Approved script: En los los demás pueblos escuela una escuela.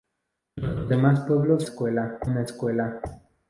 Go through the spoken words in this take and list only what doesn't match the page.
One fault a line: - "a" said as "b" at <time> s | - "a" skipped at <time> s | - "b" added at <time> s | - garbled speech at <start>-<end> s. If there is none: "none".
none